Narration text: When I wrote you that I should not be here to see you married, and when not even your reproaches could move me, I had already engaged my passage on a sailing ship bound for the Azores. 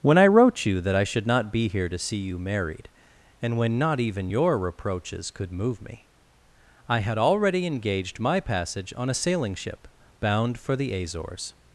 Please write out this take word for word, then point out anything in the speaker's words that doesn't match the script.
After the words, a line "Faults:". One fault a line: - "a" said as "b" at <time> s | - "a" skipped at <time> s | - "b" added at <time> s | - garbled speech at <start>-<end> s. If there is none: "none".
When I wrote you that I should not be here to see you married, and when not even your reproaches could move me, I had already engaged my passage on a sailing ship bound for the Azores.
Faults:
none